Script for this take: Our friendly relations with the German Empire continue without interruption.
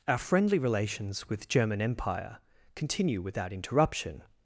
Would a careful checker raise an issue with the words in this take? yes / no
yes